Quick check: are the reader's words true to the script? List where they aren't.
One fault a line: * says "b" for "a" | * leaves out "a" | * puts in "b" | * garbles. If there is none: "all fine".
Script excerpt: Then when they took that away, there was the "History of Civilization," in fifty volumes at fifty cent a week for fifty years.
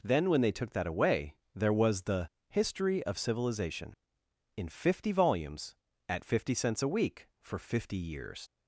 * says "cents" for "cent"